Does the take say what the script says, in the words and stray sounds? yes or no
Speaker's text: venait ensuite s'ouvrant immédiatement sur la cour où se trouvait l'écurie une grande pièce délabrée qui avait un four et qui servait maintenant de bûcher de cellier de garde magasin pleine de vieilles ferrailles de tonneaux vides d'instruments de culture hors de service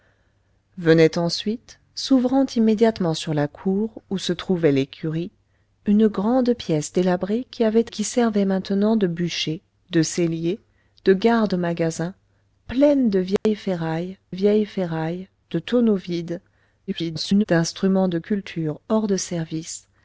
no